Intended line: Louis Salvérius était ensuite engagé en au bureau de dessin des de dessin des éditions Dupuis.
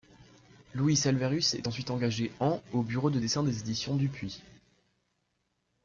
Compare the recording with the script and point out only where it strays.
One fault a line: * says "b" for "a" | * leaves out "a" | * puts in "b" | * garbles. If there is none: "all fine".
* says "est" for "était"
* leaves out "de dessin des"